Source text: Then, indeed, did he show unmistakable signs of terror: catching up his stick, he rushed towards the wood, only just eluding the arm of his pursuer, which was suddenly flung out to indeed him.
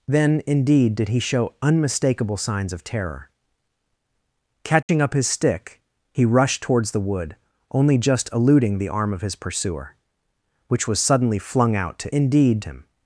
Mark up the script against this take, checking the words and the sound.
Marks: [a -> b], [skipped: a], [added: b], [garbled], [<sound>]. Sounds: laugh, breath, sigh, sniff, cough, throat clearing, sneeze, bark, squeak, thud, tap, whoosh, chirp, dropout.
Then, indeed, did he show unmistakable signs of terror: catching [dropout] up his stick, he rushed towards the wood, only just eluding the arm of his pursuer, which was suddenly flung out to indeed him.